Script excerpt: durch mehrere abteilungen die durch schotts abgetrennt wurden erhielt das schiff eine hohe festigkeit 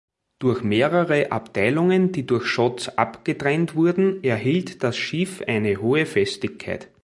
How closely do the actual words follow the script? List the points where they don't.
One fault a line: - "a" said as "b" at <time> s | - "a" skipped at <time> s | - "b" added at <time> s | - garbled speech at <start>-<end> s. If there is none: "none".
none